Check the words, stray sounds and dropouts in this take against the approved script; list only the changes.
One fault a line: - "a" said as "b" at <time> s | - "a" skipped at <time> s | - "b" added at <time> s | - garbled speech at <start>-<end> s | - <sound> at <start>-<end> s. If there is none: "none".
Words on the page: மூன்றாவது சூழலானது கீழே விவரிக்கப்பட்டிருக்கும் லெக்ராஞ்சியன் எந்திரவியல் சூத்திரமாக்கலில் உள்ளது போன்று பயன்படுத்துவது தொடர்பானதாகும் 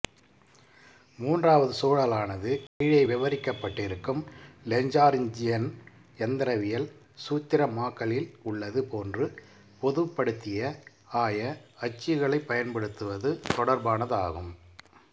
- dropout at 2.7-2.8 s
- "பொதுப்படுத்திய ஆய அச்சுகளைப்" added at 9.8 s